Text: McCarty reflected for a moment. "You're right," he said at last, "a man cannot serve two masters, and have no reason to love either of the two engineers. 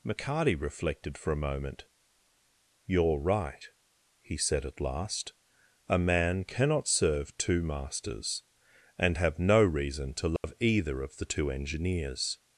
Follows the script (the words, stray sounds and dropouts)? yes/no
no